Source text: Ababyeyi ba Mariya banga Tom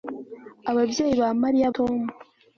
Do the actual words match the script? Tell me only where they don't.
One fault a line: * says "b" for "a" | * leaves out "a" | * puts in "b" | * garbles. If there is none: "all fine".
* leaves out "banga"